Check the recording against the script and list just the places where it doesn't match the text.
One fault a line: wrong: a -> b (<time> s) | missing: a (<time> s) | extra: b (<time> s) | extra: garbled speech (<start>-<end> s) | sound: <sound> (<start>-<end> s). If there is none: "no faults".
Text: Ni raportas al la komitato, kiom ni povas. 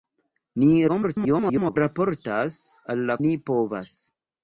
extra: garbled speech (0.9-1.8 s)
missing: komitato kiom (3.2 s)